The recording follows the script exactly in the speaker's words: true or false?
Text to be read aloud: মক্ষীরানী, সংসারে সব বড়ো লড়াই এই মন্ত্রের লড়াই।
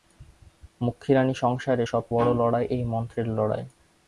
true